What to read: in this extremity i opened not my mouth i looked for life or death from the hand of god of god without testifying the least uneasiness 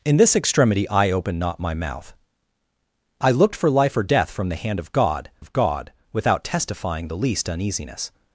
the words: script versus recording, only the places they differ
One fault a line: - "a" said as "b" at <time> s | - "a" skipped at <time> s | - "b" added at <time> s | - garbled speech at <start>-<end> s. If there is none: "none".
none